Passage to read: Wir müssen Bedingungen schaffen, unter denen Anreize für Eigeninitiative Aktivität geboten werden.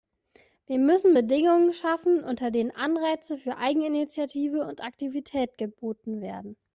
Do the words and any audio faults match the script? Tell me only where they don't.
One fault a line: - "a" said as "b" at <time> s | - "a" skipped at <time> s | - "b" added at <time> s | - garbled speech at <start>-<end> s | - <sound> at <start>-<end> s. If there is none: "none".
- "und" added at 4.7 s